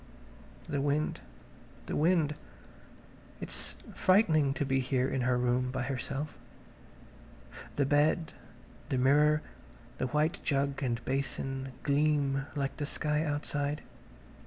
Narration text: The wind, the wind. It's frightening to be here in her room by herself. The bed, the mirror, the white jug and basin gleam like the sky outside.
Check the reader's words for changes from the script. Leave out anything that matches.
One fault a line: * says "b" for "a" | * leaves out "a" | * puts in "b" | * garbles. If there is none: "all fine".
all fine